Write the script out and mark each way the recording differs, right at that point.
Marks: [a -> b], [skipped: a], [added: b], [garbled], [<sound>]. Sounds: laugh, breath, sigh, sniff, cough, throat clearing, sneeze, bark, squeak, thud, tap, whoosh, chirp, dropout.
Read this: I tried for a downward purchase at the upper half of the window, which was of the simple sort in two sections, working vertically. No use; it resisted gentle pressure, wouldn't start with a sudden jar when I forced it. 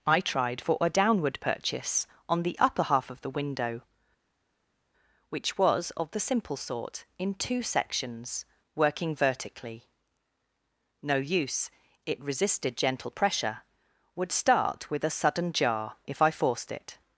I tried for a downward purchase [at -> on] the upper half of the window, which was of the simple sort in two sections, working vertically. No use; it resisted gentle pressure, [wouldn't -> would] start with a sudden jar [when -> if] I forced it.